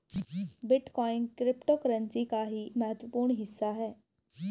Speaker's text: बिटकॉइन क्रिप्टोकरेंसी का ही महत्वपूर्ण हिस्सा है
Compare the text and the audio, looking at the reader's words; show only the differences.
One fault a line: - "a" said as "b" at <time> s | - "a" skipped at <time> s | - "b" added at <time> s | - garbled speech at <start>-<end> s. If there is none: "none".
none